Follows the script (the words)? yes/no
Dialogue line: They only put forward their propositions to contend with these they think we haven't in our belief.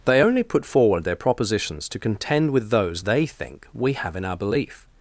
no